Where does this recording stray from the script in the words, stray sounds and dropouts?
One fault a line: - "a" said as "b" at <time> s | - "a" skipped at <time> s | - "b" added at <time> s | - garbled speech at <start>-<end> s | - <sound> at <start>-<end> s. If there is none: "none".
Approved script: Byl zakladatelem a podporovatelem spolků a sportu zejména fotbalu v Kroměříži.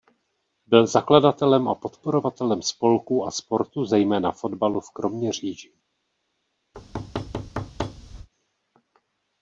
- thud at 6.7-8.3 s